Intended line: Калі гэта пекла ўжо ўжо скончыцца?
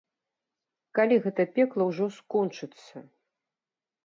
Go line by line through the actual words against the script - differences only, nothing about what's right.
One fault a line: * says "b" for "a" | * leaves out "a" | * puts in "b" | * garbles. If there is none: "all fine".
* leaves out "ўжо"